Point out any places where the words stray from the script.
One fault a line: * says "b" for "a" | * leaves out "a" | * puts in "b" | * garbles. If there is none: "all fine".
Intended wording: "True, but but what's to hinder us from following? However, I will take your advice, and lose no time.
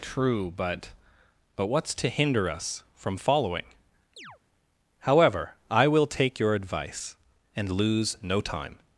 all fine